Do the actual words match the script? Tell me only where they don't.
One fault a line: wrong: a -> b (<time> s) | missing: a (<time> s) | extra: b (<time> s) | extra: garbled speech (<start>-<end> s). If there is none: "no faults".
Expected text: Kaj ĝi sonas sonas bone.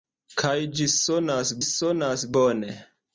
no faults